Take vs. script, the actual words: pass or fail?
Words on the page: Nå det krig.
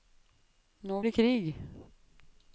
pass